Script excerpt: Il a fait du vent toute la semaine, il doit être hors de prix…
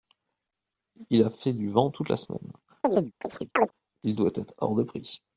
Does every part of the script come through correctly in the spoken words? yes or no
yes